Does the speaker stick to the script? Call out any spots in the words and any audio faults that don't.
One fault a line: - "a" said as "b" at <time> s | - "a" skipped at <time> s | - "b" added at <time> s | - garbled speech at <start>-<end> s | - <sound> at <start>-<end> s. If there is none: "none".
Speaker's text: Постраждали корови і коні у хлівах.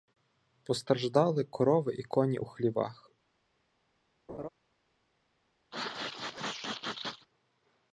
- laugh at 4.3-4.5 s
- sneeze at 5.7-7.3 s